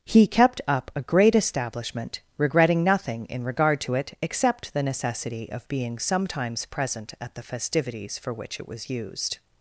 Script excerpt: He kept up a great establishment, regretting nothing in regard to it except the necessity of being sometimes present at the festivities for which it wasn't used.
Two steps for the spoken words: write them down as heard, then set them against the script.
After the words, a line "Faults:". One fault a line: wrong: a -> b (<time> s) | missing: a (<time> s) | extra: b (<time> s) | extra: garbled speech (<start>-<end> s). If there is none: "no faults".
He kept up a great establishment, regretting nothing in regard to it except the necessity of being sometimes present at the festivities for which it was used.
Faults:
wrong: wasn't -> was (8.7 s)